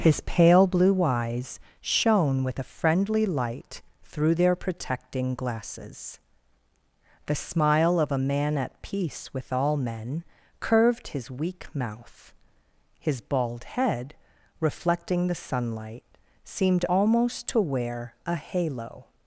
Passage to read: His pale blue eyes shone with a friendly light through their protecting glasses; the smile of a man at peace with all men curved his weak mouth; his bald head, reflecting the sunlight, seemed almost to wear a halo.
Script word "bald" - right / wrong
right